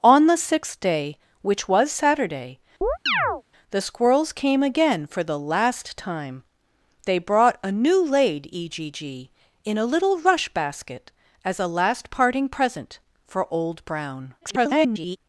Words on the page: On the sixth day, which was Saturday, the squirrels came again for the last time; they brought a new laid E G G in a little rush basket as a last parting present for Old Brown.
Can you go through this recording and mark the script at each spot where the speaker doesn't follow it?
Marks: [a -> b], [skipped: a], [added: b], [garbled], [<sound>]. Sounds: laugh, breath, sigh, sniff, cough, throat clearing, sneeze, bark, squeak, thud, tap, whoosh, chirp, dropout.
On the sixth day, which was Saturday, [chirp] the squirrels came again for the last time; they brought a new laid E G G in a little rush basket as a last parting present for Old Brown. [garbled]